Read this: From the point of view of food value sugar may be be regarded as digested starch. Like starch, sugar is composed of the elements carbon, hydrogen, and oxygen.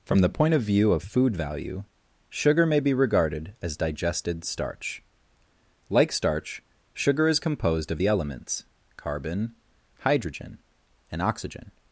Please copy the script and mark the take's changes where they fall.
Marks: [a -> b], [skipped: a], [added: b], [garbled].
From the point of view of food value sugar may be [skipped: be] regarded as digested starch. Like starch, sugar is composed of the elements carbon, hydrogen, and oxygen.